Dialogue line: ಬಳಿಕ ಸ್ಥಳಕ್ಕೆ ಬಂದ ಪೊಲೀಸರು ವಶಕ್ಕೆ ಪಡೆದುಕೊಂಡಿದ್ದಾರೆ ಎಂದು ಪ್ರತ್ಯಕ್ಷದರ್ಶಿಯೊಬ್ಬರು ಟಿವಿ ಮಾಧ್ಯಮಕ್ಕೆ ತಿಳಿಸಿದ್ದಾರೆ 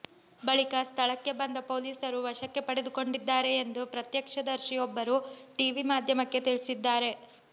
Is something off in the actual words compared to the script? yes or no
no